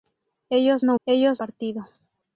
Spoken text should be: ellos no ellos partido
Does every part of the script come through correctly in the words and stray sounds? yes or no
yes